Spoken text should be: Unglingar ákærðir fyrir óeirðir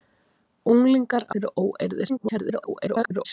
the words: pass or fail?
fail